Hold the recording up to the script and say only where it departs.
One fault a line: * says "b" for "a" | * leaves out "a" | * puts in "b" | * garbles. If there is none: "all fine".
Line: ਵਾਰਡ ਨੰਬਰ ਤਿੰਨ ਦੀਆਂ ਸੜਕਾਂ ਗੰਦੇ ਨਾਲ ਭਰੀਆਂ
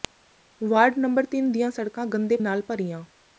all fine